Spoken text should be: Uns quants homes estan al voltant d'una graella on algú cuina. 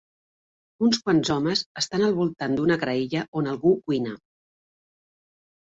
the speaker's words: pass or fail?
pass